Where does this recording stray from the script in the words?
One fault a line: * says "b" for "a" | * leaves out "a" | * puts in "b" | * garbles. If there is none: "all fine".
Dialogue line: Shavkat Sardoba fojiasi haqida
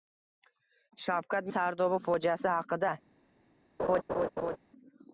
all fine